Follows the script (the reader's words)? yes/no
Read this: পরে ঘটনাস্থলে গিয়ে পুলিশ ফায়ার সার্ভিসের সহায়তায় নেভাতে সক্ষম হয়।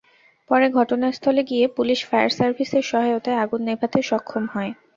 no